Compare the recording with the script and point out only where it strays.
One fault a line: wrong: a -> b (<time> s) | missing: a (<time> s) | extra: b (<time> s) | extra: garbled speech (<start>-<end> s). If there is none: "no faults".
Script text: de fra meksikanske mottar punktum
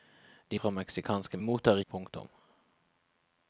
no faults